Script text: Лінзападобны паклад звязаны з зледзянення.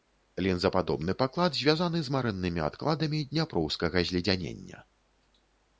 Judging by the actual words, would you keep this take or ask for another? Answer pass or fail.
fail